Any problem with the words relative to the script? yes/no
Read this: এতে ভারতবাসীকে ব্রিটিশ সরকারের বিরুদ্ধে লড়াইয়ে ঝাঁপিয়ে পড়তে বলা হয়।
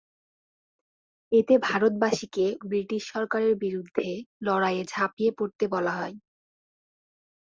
no